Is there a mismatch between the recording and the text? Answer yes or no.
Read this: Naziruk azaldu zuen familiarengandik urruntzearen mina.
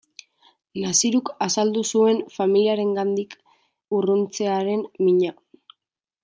no